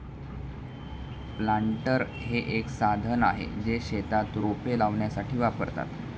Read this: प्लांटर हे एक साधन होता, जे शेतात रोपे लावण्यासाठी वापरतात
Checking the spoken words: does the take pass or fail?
fail